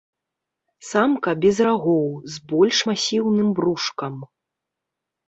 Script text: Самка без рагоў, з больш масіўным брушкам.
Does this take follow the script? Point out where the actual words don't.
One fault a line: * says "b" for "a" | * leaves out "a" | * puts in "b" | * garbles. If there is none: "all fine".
all fine